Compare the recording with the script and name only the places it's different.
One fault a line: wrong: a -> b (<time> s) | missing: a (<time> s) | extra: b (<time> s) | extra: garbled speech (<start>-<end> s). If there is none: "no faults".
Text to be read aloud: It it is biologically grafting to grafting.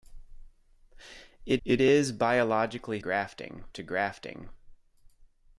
no faults